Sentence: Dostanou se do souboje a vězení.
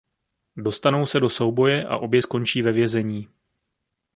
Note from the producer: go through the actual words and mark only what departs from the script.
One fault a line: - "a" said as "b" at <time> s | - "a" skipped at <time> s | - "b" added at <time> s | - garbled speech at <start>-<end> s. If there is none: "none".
- "obě skončí ve" added at 2.0 s